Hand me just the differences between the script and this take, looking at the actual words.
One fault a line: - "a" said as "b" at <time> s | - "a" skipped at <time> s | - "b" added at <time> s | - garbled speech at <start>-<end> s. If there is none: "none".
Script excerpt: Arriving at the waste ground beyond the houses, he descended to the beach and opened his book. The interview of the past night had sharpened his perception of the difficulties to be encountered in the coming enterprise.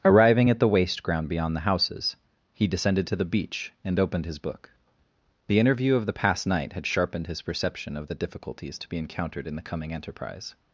none